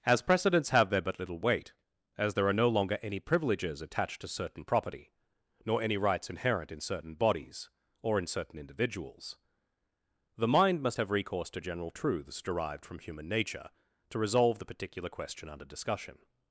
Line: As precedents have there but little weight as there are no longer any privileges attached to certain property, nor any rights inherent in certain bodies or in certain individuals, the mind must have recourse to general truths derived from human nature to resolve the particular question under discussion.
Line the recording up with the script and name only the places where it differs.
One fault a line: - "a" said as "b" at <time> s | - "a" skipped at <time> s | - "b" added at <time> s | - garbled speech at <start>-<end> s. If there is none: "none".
none